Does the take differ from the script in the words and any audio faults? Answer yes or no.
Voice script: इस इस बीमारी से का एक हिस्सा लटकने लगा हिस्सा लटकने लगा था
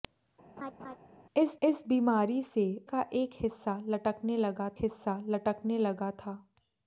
yes